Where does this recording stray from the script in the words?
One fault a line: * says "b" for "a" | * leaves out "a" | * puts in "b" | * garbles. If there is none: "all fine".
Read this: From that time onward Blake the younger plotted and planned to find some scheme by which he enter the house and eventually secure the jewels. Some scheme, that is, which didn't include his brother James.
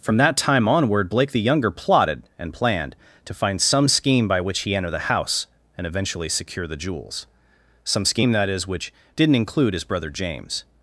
all fine